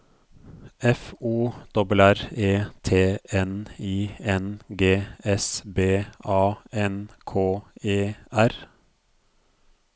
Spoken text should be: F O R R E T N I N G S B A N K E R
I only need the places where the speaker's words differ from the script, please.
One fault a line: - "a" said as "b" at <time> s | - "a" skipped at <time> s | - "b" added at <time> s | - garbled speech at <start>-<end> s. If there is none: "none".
none